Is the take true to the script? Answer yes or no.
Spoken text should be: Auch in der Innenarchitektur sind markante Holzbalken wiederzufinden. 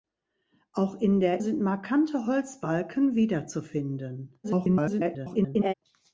no